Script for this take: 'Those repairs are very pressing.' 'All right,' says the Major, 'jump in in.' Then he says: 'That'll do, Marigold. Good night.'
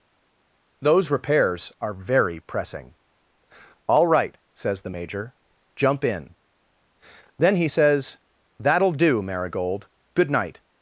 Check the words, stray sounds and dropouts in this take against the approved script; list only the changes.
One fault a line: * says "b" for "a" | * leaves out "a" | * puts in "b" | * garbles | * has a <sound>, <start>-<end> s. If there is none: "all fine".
* leaves out "in"